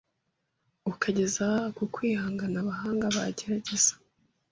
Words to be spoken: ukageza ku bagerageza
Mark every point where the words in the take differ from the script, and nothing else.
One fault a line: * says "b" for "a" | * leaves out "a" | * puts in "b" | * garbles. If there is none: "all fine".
* puts in "kwihangana abahanga"